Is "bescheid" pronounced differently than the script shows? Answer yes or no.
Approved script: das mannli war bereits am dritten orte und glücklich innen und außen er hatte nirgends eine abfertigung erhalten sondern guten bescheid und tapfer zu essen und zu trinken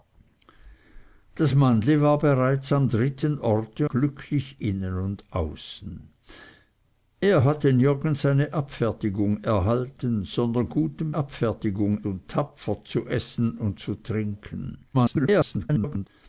yes